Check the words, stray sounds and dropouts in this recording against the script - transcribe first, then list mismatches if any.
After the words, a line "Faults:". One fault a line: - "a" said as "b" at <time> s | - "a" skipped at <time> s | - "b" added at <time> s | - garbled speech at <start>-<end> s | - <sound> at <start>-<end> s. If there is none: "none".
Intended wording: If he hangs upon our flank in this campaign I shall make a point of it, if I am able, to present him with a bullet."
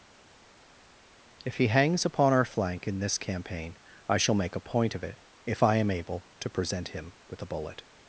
If he hangs upon our flank in this campaign I shall make a point of it, if I am able, to present him with a bullet."
Faults:
none